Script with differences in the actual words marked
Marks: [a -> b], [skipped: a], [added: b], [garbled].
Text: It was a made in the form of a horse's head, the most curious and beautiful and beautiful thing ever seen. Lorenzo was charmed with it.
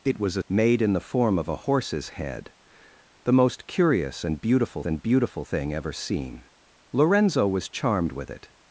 It was a made in the form of a horse's head, the most curious and beautiful and beautiful thing ever seen. Lorenzo was charmed with it.